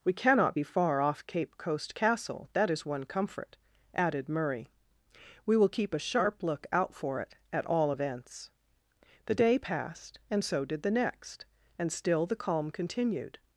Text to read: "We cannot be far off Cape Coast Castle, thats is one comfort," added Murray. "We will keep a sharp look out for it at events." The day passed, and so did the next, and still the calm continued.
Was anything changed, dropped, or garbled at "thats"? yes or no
yes